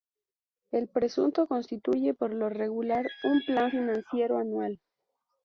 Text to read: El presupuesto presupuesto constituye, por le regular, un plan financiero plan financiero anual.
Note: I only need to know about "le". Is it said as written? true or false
false